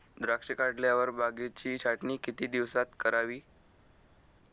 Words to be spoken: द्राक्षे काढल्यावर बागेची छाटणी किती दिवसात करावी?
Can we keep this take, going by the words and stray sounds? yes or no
yes